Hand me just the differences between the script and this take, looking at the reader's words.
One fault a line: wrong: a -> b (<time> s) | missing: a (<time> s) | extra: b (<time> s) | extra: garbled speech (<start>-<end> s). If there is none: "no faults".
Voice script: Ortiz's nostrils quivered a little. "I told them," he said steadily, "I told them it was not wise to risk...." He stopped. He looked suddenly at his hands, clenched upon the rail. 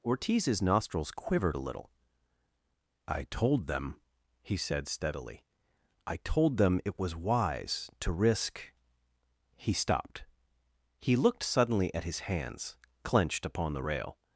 missing: not (7.1 s)